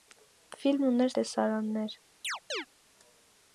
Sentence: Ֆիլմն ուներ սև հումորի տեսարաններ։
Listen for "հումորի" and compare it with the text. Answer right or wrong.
wrong